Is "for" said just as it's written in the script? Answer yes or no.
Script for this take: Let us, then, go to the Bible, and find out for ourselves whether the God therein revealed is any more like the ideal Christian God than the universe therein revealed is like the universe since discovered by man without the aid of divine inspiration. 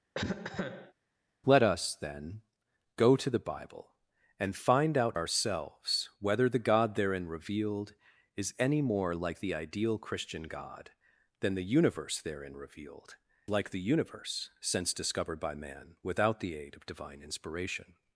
no